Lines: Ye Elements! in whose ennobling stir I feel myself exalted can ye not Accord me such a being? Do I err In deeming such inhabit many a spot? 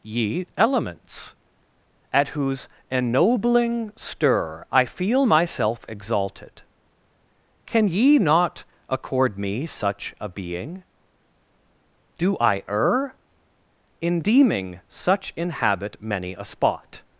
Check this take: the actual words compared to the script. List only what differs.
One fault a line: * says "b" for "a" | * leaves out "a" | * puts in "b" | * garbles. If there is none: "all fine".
* says "at" for "in"